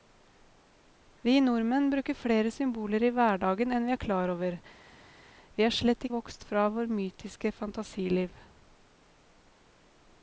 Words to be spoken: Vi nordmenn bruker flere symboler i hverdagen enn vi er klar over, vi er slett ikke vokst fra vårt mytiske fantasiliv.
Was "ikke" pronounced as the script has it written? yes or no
no